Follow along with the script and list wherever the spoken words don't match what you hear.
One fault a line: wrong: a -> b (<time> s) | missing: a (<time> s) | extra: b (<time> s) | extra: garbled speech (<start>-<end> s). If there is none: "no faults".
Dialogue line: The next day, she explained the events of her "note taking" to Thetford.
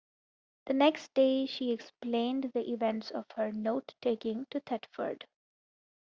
no faults